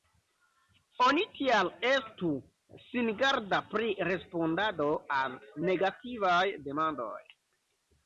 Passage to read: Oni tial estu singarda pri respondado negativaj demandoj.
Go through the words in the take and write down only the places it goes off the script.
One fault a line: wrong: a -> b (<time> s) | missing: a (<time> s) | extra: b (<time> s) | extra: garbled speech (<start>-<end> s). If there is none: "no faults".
extra: al (5.2 s)